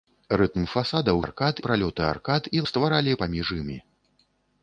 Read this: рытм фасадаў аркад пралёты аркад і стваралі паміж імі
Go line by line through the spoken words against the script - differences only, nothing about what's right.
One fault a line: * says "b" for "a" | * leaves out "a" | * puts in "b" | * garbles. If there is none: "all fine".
all fine